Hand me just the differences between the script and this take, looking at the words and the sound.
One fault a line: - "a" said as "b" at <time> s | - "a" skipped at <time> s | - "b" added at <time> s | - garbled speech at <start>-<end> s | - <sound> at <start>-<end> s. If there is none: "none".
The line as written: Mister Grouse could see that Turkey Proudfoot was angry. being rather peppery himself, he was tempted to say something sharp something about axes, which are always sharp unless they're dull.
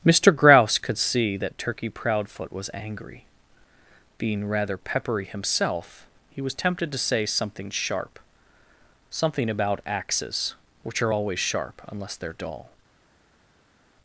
none